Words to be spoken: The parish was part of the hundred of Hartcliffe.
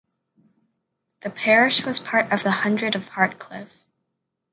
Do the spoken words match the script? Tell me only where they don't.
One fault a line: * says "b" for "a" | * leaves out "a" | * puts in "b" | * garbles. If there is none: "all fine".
all fine